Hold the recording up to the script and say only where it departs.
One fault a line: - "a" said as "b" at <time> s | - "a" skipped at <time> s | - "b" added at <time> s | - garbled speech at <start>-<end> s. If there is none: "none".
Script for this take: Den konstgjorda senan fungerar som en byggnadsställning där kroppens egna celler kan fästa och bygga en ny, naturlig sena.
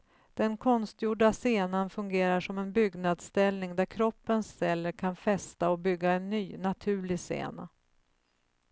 - "egna" skipped at 4.5 s